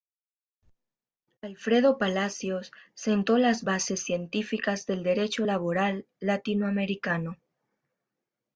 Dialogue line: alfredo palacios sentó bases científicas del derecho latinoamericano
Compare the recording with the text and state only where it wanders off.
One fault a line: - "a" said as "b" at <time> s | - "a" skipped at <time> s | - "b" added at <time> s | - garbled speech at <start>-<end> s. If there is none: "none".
- "las" added at 3.4 s
- "laboral" added at 5.4 s